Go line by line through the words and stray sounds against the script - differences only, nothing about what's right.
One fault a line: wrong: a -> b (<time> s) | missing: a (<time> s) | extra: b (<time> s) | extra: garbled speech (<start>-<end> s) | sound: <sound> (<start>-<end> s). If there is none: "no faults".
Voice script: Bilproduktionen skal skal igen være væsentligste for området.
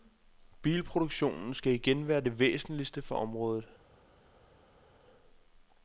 missing: skal (1.7 s)
extra: det (2.2 s)